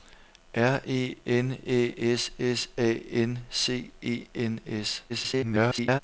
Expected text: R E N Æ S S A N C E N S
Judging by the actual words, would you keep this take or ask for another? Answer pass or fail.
fail